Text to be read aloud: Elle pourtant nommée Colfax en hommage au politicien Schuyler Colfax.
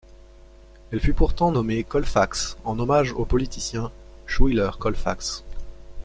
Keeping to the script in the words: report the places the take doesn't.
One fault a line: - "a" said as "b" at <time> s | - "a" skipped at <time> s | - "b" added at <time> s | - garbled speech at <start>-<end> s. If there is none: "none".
- "fut" added at 1.0 s